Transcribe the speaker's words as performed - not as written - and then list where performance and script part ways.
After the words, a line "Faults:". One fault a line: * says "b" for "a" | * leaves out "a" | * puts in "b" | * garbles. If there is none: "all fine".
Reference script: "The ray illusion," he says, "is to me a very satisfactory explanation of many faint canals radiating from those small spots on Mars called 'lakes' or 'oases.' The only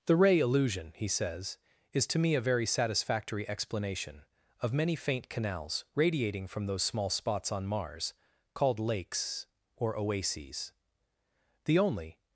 "The ray illusion," he says, "is to me a very satisfactory explanation of many faint canals radiating from those small spots on Mars called 'lakes' or 'oases.' The only
Faults:
all fine